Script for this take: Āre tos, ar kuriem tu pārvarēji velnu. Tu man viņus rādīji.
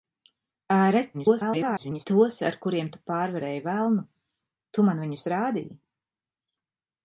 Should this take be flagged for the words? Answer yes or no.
yes